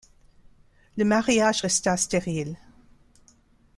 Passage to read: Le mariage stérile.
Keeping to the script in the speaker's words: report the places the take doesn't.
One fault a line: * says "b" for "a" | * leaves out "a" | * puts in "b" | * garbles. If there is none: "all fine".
* puts in "resta"